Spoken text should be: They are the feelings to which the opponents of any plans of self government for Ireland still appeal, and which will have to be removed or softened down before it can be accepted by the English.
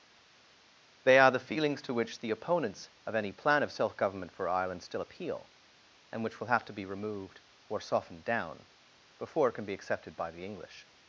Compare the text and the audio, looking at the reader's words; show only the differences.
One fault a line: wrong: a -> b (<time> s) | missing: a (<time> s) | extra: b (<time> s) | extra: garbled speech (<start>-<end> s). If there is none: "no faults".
wrong: plans -> plan (3.3 s)